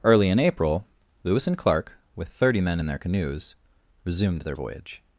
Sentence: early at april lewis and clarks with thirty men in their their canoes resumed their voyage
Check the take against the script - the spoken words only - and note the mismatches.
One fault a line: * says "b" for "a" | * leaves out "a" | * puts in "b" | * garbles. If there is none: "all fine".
* says "in" for "at"
* says "clark" for "clarks"
* leaves out "their"